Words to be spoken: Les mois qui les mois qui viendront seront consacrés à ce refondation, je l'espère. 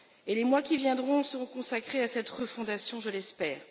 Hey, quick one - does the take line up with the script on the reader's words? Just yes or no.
no